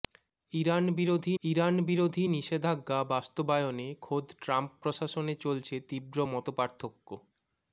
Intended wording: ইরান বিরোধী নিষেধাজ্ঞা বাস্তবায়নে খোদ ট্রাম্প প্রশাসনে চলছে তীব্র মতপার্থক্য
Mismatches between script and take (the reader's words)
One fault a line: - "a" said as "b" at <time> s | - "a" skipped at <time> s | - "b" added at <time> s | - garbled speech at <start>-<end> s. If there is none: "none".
- "ইরান বিরোধী" added at 1.4 s